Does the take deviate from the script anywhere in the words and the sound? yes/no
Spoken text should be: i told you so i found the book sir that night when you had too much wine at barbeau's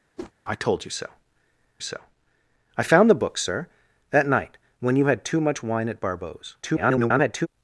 yes